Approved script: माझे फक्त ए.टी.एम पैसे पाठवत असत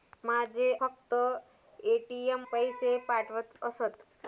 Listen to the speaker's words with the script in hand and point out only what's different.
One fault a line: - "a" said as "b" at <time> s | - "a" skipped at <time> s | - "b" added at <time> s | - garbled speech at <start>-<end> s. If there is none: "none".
none